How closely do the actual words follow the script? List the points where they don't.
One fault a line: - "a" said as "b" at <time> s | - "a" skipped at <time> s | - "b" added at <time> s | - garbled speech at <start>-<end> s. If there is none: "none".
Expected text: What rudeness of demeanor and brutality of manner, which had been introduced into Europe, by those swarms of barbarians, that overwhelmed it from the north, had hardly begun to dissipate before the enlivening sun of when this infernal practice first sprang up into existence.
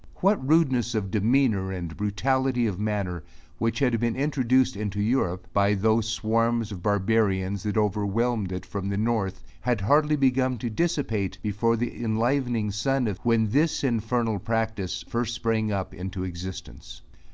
none